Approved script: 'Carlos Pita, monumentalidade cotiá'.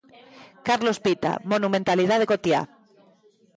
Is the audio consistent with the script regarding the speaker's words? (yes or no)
yes